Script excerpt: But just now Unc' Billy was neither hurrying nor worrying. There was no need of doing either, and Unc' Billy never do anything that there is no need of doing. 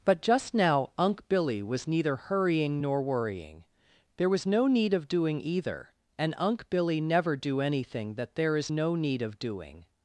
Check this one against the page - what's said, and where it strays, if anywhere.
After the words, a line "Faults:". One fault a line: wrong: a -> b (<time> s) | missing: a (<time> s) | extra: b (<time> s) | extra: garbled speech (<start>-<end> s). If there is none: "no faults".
But just now Unc' Billy was neither hurrying nor worrying. There was no need of doing either, and Unc' Billy never do anything that there is no need of doing.
Faults:
no faults